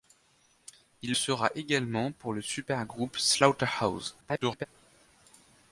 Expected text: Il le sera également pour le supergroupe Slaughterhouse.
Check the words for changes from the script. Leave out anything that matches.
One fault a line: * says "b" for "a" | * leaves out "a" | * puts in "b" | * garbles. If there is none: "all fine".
* leaves out "le"
* garbles